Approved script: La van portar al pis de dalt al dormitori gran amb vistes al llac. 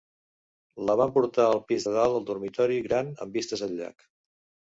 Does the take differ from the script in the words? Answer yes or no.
no